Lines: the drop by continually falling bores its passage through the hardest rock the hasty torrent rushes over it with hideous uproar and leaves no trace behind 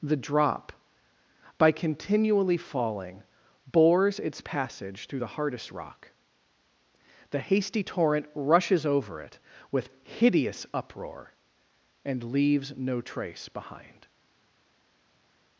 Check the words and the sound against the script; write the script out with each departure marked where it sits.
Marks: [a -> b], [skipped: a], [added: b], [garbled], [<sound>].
the drop by continually falling bores its passage through the hardest rock the hasty torrent rushes over it with hideous uproar and leaves no trace behind